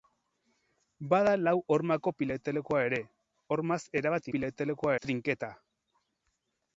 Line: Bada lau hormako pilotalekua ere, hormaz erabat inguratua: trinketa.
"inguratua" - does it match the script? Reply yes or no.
no